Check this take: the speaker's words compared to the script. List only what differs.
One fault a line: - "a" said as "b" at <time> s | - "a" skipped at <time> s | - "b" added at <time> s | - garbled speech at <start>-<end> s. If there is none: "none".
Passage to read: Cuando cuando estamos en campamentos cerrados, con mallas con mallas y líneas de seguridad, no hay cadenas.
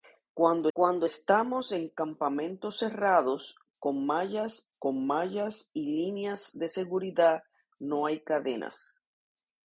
none